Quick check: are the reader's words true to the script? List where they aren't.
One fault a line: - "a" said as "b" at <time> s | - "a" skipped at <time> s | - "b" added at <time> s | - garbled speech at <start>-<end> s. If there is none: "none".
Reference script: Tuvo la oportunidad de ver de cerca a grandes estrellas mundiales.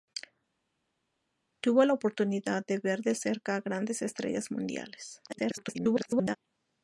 - garbled speech at 5.3-6.4 s